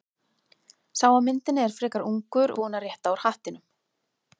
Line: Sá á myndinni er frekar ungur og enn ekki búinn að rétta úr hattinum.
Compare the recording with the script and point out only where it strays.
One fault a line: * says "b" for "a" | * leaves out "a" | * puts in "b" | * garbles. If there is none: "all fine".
* leaves out "og enn ekki"